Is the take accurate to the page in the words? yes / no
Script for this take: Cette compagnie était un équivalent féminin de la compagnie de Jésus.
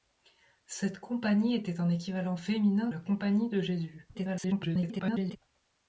no